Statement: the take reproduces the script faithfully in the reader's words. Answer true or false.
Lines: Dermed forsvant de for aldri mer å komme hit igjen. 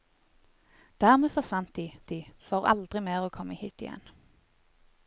false